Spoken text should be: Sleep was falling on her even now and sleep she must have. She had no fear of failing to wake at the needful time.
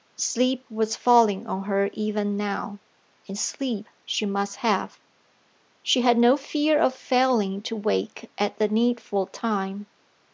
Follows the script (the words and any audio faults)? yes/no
yes